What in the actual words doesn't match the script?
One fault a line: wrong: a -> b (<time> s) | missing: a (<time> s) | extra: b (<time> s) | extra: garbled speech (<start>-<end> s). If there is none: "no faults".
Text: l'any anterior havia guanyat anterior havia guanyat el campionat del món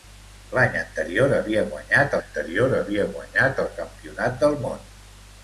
no faults